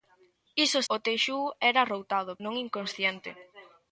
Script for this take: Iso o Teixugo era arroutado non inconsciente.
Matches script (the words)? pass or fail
pass